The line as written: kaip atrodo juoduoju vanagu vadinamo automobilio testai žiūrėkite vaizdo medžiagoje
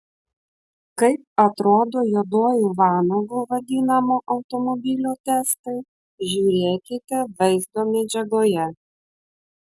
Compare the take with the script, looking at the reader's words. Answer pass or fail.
pass